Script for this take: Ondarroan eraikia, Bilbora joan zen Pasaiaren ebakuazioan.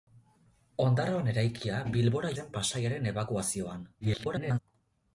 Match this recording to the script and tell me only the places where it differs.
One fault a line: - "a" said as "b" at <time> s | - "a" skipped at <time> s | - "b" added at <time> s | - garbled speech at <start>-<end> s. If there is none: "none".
- "joan" skipped at 2.3 s
- garbled speech at 4.0-4.6 s